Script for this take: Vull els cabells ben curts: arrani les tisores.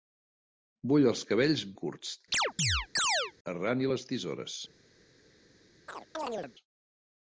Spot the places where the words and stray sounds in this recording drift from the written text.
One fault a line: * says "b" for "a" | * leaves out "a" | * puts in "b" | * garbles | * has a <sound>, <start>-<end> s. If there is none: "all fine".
* leaves out "ben"
* has a chirp, 2.3-3.3 s
* has a chirp, 5.9-6.5 s